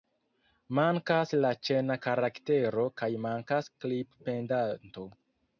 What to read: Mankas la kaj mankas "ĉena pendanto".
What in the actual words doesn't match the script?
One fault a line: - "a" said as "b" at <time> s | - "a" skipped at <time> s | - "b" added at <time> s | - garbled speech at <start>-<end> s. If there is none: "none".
- "ĉena karaktero" added at 1.7 s
- "ĉena" said as "klip" at 3.9 s